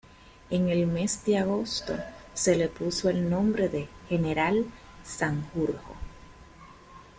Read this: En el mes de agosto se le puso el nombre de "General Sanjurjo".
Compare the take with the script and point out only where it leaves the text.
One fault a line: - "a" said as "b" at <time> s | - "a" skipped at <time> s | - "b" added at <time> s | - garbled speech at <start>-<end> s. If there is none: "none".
none